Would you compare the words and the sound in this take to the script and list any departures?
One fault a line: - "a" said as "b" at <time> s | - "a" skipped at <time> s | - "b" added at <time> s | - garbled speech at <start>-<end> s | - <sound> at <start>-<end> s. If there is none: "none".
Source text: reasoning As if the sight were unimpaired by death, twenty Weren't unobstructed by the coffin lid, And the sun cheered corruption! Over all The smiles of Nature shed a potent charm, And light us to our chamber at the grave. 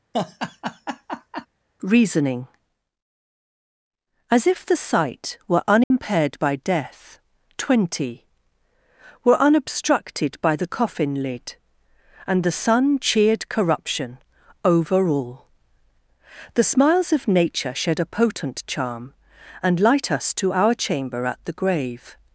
- laugh at 0.1-1.5 s
- dropout at 5.8-5.9 s
- "Weren't" said as "Were" at 9.2 s